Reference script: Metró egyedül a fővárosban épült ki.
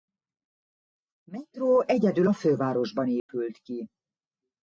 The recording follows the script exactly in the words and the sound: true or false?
false